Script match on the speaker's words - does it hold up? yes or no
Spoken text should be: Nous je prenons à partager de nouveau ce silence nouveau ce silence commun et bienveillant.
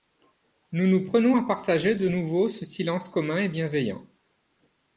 no